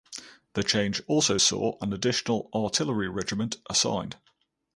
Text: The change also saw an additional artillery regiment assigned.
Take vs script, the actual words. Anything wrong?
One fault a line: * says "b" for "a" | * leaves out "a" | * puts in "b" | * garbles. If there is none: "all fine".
all fine